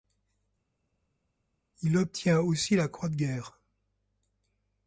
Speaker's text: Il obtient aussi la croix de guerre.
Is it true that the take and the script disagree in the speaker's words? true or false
false